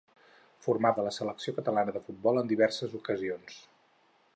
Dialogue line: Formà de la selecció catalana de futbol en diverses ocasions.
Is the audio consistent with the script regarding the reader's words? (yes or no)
yes